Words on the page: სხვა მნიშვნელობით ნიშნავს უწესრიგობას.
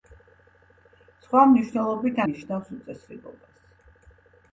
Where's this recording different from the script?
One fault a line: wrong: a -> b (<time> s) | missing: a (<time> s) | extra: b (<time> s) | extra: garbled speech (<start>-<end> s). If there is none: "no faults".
no faults